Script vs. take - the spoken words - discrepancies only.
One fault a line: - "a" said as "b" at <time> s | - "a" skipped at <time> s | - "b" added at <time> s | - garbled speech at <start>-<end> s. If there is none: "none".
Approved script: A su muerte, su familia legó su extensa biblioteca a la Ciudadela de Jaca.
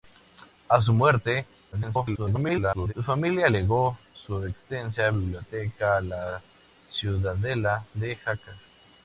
- garbled speech at 1.7-2.9 s